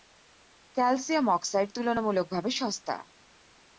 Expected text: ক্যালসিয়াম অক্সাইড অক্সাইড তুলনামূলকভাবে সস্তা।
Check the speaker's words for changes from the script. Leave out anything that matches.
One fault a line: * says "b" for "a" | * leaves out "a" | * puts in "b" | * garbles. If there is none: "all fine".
* leaves out "অক্সাইড"